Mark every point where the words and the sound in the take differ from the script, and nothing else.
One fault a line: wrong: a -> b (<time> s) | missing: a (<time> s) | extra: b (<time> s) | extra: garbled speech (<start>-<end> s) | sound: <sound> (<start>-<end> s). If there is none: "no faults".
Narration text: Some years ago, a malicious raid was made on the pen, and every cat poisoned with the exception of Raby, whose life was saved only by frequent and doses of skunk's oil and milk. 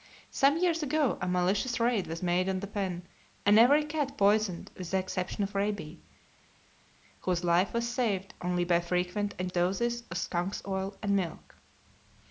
no faults